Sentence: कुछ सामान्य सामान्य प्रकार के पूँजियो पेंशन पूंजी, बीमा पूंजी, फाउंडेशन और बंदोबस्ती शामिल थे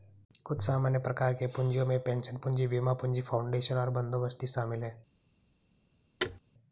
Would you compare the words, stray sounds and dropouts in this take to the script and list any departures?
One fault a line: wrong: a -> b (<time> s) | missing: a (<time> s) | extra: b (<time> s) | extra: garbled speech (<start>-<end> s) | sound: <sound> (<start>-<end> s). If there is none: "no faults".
missing: सामान्य (1.0 s)
extra: में (1.9 s)
wrong: थे -> हैं (4.8 s)
sound: thud (6.2-6.4 s)